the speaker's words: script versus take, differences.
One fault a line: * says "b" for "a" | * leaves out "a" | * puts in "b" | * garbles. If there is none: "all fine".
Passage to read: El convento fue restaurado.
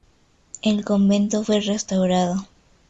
all fine